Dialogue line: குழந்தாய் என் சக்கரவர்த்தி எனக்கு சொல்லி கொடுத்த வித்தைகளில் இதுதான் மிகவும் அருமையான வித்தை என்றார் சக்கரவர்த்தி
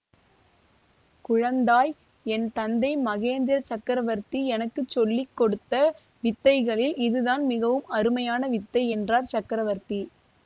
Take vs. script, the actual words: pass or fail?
fail